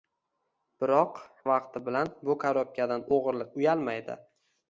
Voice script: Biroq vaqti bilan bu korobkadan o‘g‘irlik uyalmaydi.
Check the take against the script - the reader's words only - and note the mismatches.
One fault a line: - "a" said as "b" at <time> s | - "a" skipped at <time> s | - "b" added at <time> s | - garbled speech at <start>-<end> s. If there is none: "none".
none